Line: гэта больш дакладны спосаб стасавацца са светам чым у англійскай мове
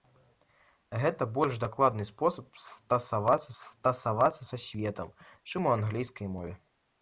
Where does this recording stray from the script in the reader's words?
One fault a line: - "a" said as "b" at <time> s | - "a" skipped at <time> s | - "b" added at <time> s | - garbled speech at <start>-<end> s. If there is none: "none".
- "стасавацца" added at 3.6 s